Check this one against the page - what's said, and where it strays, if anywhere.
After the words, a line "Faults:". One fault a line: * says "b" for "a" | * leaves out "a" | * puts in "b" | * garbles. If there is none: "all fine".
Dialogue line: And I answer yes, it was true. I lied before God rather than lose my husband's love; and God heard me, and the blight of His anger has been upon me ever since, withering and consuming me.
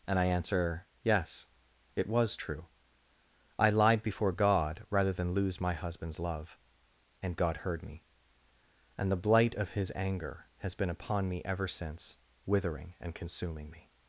And I answer yes, it was true. I lied before God rather than lose my husband's love; and God heard me, and the blight of His anger has been upon me ever since, withering and consuming me.
Faults:
all fine